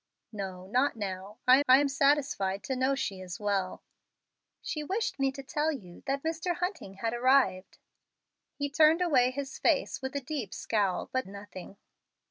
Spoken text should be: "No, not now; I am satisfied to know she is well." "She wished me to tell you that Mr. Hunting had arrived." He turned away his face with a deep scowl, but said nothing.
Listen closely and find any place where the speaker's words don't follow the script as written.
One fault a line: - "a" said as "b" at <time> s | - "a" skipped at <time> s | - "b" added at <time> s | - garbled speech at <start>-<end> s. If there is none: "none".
- "I" added at 1.7 s
- "said" skipped at 11.3 s